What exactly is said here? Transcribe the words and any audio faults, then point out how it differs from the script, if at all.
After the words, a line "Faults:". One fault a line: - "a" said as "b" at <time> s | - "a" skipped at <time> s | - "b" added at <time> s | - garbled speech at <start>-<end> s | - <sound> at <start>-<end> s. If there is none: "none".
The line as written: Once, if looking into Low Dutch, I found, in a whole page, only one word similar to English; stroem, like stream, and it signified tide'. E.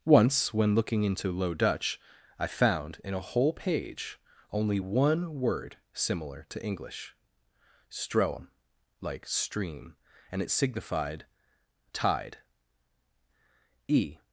Once, when looking into Low Dutch, I found, in a whole page, only one word similar to English; stroem, like stream, and it signified tide'. E.
Faults:
- "if" said as "when" at 0.5 s